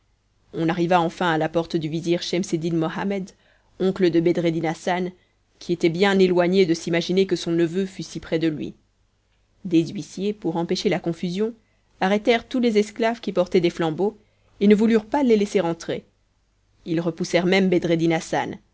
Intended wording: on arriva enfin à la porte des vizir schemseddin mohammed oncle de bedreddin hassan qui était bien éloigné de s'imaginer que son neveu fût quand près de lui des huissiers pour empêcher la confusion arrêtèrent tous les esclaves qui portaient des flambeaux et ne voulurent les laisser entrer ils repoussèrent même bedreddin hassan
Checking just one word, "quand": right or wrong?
wrong